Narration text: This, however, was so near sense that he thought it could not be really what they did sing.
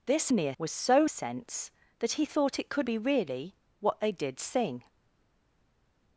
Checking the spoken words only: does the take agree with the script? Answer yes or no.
no